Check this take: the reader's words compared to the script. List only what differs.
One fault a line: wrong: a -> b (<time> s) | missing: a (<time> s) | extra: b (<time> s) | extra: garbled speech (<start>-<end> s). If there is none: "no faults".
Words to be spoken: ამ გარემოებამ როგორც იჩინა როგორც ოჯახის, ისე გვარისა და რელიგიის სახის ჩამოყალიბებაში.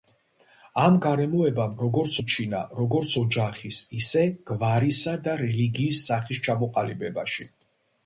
no faults